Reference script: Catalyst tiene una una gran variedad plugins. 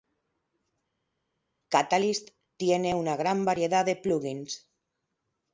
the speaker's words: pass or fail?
fail